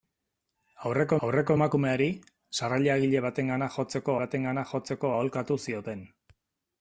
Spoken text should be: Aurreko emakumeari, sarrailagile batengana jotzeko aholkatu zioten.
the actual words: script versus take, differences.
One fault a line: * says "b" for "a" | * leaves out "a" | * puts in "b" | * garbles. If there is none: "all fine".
* puts in "aurreko"
* puts in "batengana jotzeko"